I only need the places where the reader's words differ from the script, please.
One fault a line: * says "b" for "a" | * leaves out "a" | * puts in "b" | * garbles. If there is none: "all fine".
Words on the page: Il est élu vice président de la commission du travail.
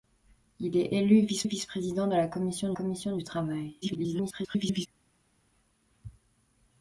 * puts in "vice"
* puts in "commission"
* garbles